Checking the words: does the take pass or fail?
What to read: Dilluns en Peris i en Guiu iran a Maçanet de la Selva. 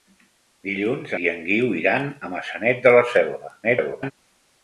fail